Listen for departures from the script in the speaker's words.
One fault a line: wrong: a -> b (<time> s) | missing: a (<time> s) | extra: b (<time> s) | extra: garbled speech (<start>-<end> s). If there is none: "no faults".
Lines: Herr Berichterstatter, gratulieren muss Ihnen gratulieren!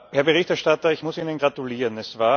wrong: gratulieren -> ich (0.9 s)